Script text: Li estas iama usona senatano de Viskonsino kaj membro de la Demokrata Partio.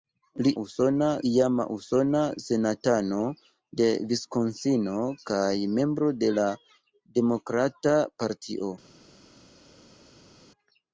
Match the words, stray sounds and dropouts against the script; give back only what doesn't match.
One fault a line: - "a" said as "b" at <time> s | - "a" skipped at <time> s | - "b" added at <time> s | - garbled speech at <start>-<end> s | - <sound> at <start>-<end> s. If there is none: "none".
- "estas" said as "usona" at 0.6 s